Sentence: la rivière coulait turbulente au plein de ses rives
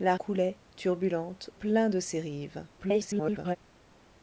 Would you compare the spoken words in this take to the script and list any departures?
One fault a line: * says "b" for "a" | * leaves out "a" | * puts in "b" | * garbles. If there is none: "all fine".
* leaves out "rivière"
* leaves out "au"
* garbles